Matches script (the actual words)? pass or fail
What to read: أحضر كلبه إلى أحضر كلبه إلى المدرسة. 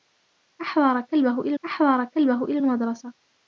pass